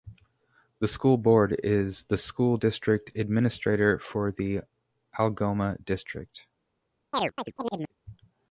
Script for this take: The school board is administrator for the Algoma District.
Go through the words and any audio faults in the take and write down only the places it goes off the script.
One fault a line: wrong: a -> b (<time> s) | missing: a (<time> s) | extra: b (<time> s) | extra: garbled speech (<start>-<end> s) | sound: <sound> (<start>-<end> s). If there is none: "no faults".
extra: the school district (2.0 s)
sound: chirp (7.1-7.9 s)